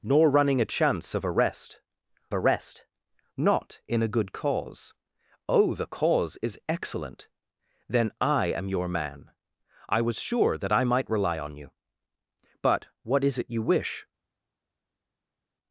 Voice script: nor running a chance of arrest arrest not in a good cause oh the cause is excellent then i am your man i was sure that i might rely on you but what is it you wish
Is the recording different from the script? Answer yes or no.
no